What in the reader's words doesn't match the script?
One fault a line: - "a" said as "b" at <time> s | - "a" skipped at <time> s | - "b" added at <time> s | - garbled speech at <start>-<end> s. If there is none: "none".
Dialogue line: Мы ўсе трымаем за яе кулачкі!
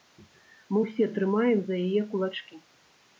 none